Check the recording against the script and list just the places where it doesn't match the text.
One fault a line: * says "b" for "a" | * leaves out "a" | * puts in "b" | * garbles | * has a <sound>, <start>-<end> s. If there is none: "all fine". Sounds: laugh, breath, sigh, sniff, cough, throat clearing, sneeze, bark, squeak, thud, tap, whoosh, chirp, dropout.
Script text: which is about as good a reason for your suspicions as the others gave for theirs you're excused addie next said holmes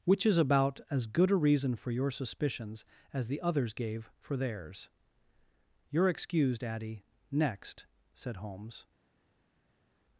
all fine